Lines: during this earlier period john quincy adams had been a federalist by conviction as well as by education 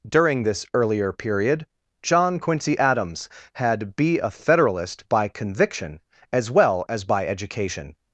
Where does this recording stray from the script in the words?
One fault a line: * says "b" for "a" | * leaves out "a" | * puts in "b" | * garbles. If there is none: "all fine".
* says "be" for "been"